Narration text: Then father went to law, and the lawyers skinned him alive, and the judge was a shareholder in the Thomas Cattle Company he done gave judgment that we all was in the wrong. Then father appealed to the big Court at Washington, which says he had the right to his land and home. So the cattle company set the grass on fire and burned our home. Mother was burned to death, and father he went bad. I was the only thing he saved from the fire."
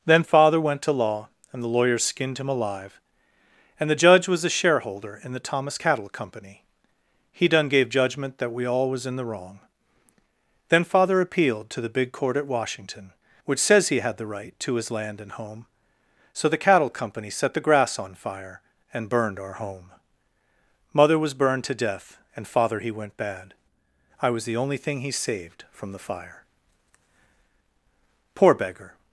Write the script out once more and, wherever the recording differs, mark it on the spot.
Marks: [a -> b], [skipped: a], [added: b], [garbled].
Then father went to law, and the lawyers skinned him alive, and the judge was a shareholder in the Thomas Cattle Company he done gave judgment that we all was in the wrong. Then father appealed to the big Court at Washington, which says he had the right to his land and home. So the cattle company set the grass on fire and burned our home. Mother was burned to death, and father he went bad. I was the only thing he saved from the fire." [added: Poor beggar]